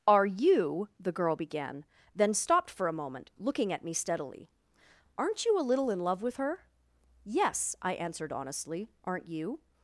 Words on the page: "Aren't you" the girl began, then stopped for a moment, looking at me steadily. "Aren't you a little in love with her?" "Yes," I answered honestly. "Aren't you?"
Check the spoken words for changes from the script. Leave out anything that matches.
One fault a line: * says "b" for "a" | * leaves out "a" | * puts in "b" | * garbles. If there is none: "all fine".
* says "Are" for "Aren't"